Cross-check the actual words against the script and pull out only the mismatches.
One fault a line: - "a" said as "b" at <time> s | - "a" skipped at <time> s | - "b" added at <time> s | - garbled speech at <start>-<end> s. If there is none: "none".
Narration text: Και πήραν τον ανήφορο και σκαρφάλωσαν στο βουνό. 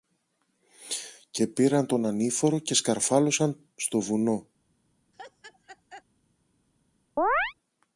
none